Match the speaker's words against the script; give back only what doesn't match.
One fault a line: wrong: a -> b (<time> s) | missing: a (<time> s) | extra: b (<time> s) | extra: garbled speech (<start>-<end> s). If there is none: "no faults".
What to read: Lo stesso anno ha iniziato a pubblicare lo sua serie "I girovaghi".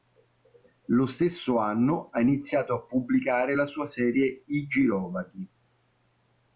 wrong: lo -> la (3.5 s)